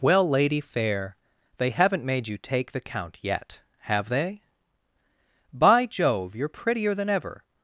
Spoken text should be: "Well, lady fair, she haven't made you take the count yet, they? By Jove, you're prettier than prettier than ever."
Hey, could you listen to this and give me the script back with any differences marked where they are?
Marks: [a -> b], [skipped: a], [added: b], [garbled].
"Well, lady fair, [she -> they] haven't made you take the count yet, [added: have] they? By Jove, you're prettier than [skipped: prettier than] ever."